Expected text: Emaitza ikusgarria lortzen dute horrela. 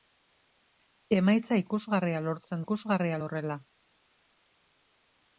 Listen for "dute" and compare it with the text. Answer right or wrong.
wrong